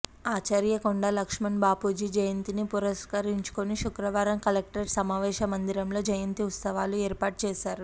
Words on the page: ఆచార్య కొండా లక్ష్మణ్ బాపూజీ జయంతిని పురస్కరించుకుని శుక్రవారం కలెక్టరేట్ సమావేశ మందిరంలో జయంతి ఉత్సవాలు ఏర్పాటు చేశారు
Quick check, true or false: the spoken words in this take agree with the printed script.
true